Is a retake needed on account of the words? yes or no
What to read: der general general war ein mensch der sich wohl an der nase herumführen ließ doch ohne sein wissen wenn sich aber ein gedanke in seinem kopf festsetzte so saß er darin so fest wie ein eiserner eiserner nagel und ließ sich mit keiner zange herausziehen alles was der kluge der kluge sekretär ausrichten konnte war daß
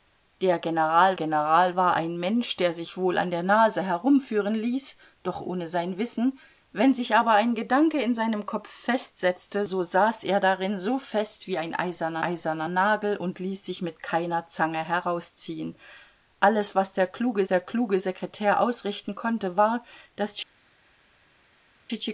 no